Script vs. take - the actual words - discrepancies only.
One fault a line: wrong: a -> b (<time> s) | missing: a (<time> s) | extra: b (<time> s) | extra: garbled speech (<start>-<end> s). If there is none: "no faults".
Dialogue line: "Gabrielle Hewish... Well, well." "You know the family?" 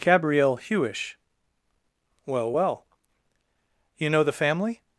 no faults